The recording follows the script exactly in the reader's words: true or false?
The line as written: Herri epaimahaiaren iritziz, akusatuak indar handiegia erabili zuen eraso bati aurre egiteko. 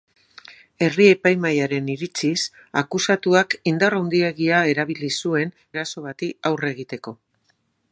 true